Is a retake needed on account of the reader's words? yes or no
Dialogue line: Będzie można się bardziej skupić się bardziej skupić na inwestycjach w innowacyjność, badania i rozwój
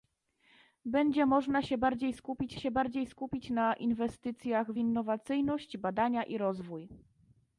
no